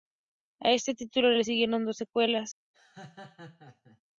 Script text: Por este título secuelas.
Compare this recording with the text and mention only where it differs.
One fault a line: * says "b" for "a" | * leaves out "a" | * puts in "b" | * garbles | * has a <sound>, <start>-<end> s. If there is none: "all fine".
* says "A" for "Por"
* puts in "le siguieron dos"
* has a laugh, 2.7-4.0 s